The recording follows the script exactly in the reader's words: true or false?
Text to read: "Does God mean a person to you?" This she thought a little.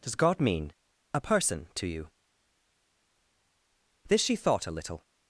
true